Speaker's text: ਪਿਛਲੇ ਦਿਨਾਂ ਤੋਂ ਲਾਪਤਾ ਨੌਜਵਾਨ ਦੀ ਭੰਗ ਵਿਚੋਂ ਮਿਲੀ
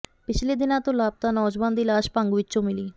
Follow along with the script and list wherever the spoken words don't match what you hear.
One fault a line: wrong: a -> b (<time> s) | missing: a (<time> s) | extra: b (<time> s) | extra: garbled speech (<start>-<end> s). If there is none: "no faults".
extra: ਲਾਸ਼ (1.8 s)